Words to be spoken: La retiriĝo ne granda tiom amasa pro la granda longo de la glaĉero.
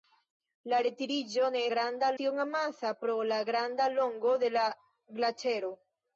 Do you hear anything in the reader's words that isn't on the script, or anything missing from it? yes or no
no